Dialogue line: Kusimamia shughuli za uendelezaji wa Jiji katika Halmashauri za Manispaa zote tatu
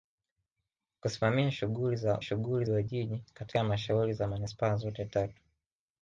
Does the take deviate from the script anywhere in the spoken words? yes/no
yes